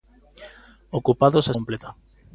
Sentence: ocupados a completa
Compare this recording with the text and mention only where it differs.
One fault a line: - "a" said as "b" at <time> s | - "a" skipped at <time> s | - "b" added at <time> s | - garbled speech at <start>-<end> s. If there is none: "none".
none